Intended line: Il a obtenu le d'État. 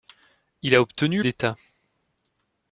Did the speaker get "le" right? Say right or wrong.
wrong